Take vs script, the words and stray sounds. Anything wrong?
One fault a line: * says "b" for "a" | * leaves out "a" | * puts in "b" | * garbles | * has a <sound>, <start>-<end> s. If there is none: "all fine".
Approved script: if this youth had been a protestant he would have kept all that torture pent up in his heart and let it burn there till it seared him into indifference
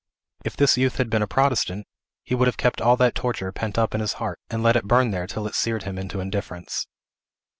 all fine